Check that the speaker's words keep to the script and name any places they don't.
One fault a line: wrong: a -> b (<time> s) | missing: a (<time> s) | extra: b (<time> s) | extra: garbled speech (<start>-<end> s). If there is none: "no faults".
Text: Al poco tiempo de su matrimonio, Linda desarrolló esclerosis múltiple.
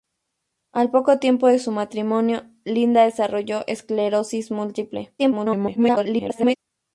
extra: garbled speech (5.2-6.6 s)